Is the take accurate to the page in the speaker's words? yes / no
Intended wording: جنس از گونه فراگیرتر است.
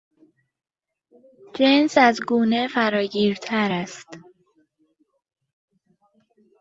yes